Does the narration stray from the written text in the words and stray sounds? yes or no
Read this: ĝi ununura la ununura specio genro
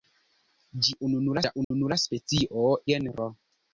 yes